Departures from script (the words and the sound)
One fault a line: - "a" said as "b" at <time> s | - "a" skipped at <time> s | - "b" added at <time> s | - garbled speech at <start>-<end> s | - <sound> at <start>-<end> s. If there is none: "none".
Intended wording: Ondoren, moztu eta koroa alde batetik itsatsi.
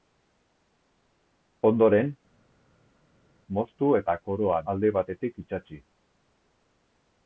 none